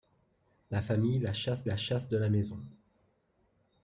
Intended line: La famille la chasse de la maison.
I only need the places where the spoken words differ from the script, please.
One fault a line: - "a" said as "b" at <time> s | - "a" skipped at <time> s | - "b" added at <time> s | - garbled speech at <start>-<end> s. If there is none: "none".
- "la chasse" added at 1.6 s